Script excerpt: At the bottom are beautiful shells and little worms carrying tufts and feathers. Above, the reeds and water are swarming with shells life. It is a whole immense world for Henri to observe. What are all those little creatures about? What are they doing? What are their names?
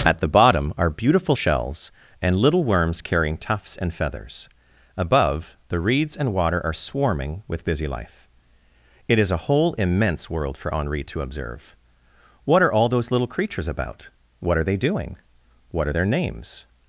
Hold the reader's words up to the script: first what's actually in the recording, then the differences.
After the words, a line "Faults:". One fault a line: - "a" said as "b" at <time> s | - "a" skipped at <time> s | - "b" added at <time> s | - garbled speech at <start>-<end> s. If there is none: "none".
At the bottom are beautiful shells and little worms carrying tufts and feathers. Above, the reeds and water are swarming with busy life. It is a whole immense world for Henri to observe. What are all those little creatures about? What are they doing? What are their names?
Faults:
- "shells" said as "busy" at 7.6 s